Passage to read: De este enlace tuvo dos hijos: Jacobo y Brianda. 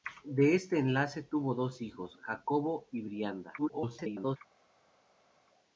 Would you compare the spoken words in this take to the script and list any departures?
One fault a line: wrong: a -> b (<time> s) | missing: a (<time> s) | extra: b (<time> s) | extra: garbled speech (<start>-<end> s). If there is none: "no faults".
extra: garbled speech (3.6-4.4 s)